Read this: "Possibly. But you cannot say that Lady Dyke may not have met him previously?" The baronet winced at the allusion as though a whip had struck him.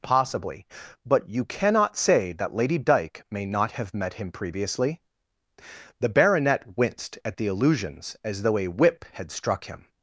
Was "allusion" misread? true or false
true